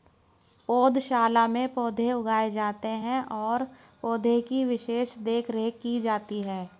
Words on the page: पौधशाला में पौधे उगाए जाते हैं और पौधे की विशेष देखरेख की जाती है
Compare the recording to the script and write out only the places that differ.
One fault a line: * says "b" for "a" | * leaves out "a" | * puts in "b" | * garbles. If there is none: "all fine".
all fine